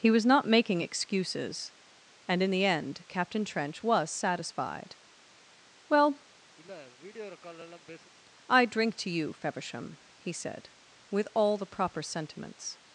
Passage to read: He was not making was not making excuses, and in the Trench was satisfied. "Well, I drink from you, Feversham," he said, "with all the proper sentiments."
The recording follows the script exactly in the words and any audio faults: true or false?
false